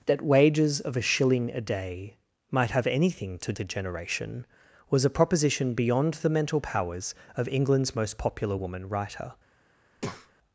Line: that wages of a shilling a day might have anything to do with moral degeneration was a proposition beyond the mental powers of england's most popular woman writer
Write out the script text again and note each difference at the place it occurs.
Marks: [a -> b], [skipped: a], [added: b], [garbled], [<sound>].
that wages of a shilling a day might have anything to [skipped: do with moral] degeneration was a proposition beyond the mental powers of england's most popular woman writer [breath]